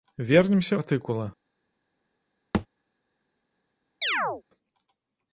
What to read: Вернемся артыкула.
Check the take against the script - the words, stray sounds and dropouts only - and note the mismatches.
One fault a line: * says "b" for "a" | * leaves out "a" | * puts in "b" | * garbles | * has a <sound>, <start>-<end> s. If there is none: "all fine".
* has a thud, 2.5-2.7 s
* has a chirp, 4.0-4.4 s